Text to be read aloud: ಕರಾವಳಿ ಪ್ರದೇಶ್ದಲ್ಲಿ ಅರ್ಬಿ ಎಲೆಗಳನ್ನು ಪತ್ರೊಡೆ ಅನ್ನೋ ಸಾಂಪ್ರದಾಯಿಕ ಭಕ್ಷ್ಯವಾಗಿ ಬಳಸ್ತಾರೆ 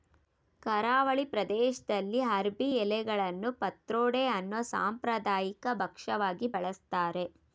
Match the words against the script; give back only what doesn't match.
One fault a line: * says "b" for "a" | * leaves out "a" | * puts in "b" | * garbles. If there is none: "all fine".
all fine